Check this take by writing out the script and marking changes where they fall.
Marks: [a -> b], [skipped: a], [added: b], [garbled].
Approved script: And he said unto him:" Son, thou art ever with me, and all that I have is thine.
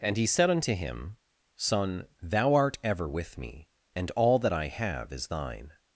And he said unto him:" Son, thou art ever with me, and all that I have is thine.